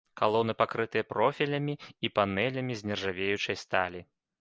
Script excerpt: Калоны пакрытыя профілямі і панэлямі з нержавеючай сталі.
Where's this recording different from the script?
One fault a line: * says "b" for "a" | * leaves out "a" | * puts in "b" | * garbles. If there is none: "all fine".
all fine